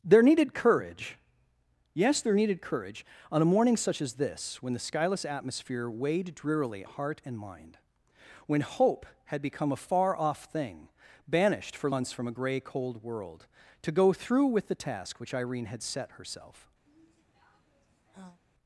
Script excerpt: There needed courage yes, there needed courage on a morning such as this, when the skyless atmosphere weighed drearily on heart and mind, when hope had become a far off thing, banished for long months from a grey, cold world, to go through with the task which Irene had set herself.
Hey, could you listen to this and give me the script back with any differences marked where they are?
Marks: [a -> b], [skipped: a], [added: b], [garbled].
There needed courage yes, there needed courage on a morning such as this, when the skyless atmosphere weighed drearily [skipped: on] heart and mind, when hope had become a far off thing, banished for [skipped: long] months from a grey, cold world, to go through with the task which Irene had set herself.